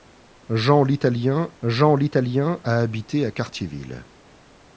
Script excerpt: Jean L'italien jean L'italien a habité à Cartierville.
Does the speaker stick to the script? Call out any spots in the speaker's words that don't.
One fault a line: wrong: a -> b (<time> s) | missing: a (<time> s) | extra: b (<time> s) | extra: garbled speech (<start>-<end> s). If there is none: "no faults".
no faults